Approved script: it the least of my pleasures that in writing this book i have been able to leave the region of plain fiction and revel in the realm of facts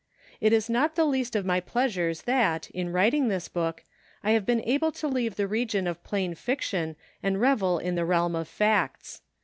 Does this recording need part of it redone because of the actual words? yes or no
yes